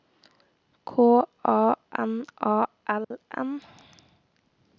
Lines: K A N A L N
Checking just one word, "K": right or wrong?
right